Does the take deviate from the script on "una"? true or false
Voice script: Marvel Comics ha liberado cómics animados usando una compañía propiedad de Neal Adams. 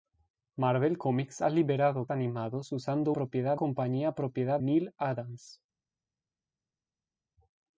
true